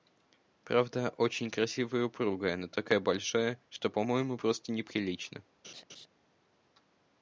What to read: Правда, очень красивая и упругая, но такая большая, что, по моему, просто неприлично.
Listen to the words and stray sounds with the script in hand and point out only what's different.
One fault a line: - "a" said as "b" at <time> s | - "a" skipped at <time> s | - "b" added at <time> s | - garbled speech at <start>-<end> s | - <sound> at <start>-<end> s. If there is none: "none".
- laugh at 5.6-6.1 s